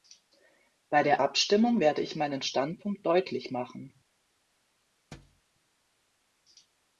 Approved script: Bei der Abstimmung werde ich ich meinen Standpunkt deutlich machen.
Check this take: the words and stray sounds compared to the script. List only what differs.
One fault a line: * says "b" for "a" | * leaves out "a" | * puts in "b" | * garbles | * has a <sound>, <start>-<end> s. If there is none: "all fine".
* leaves out "ich"
* has a thud, 5.1-5.4 s